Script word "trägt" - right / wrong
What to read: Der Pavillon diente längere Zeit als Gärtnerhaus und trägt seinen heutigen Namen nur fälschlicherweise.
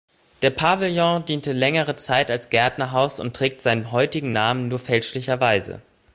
right